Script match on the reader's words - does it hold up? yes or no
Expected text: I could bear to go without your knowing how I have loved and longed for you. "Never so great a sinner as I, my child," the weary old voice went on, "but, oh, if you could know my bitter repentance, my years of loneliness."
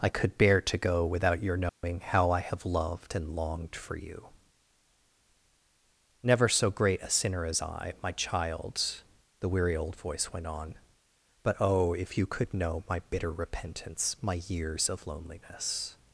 yes